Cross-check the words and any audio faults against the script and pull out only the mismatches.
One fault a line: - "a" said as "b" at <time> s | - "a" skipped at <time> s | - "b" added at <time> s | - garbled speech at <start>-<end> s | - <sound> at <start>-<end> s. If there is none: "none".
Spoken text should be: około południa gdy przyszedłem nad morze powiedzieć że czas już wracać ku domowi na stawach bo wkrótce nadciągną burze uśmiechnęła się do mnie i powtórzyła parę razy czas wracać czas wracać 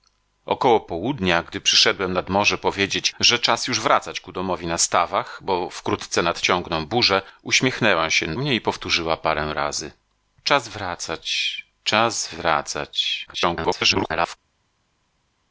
- "do" skipped at 8.4 s
- garbled speech at 13.3-14.4 s